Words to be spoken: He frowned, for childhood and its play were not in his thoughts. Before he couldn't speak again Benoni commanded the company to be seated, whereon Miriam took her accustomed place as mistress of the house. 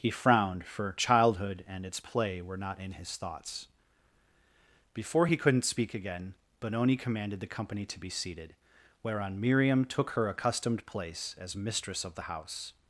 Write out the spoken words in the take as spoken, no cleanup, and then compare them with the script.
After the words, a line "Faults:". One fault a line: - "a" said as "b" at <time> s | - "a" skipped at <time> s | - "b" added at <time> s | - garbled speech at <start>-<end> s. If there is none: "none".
He frowned, for childhood and its play were not in his thoughts. Before he couldn't speak again Benoni commanded the company to be seated, whereon Miriam took her accustomed place as mistress of the house.
Faults:
none